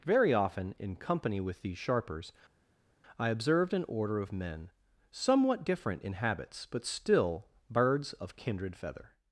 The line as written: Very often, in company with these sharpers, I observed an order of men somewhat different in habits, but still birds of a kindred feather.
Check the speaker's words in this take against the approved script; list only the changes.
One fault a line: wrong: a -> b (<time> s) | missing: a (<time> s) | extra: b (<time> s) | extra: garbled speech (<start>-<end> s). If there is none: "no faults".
missing: a (8.4 s)